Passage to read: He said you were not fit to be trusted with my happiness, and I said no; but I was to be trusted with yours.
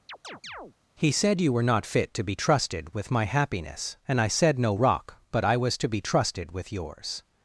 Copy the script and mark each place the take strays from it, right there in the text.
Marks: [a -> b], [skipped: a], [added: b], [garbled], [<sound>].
[chirp] He said you were not fit to be trusted with my happiness, and I said no; [added: rock] but I was to be trusted with yours.